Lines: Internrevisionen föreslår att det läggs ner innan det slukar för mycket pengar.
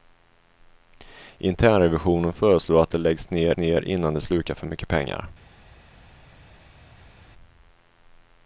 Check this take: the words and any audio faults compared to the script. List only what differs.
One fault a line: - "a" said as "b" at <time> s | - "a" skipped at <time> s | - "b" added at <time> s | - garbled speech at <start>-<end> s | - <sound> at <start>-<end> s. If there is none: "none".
- "ner" added at 3.5 s